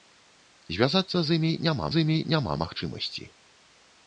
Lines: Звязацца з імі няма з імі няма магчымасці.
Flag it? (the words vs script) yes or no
no